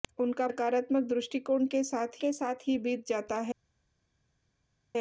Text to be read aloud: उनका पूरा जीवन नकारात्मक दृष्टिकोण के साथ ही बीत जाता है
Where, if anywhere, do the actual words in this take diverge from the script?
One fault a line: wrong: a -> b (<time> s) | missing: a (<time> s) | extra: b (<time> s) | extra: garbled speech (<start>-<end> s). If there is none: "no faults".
wrong: पूरा जीवन नकारात्मक दृष्टिकोण -> नकारात्मक दृष्टिकोण के साथ (0.5 s)